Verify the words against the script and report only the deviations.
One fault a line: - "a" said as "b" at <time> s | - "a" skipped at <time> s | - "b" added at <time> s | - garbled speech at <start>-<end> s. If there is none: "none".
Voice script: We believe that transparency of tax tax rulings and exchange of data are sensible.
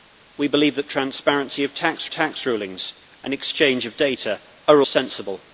none